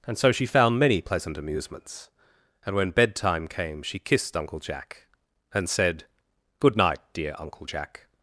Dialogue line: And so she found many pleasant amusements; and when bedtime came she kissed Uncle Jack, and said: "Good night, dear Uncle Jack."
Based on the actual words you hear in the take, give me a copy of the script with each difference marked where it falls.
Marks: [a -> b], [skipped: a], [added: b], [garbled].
And so she found many pleasant amusements; and when bedtime came she kissed Uncle Jack, and said: "Good night, dear Uncle Jack."